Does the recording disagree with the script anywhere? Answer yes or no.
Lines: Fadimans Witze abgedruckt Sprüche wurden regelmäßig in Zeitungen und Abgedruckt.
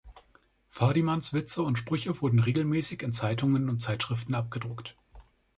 yes